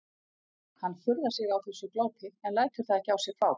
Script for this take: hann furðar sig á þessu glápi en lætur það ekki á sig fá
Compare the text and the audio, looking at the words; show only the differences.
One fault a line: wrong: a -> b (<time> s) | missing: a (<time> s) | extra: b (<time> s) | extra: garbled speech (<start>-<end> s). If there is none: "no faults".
no faults